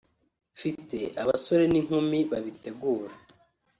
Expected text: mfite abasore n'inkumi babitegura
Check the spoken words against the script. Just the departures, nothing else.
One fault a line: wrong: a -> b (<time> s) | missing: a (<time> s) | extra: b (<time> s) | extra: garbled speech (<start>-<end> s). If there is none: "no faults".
no faults